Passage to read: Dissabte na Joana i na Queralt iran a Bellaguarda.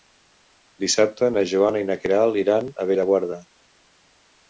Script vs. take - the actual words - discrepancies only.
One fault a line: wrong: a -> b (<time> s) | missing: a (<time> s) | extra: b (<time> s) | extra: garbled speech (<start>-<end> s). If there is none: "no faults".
no faults